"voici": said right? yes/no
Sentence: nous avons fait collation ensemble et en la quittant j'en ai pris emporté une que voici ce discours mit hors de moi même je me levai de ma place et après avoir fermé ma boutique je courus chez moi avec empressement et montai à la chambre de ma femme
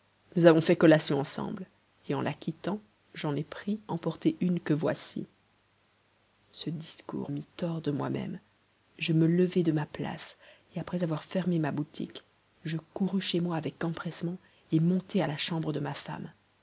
yes